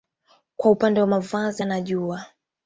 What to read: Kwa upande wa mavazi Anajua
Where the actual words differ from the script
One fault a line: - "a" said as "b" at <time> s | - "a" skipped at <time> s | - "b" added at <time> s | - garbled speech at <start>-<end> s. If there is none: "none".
none